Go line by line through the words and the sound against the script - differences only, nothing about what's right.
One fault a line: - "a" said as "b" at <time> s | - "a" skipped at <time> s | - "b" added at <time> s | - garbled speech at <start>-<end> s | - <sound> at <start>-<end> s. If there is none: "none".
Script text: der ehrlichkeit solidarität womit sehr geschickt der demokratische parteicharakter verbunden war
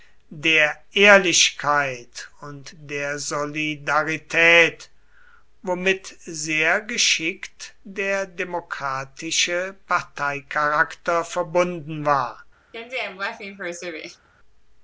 - "und der" added at 2.4 s
- laugh at 12.7-14.3 s